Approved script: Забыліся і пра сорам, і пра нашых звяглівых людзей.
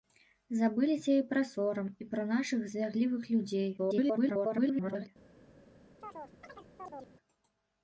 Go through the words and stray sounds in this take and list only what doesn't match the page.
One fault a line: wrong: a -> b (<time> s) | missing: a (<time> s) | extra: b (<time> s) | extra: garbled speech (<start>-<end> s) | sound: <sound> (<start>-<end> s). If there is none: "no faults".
extra: garbled speech (3.8-5.1 s)
sound: chirp (6.0-7.1 s)